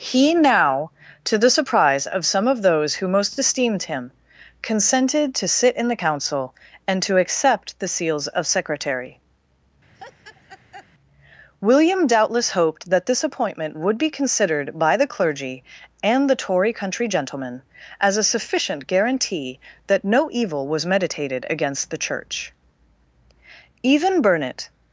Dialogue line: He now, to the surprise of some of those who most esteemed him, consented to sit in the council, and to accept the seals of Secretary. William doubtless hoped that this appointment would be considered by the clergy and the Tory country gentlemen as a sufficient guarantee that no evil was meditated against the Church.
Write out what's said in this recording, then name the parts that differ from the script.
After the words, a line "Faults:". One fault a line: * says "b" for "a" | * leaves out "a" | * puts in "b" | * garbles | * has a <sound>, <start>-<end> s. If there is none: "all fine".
He now, to the surprise of some of those who most esteemed him, consented to sit in the council, and to accept the seals of Secretary. William doubtless hoped that this appointment would be considered by the clergy and the Tory country gentlemen as a sufficient guarantee that no evil was meditated against the Church. Even Burnet
Faults:
* has a laugh, 9.9-10.9 s
* puts in "Even Burnet"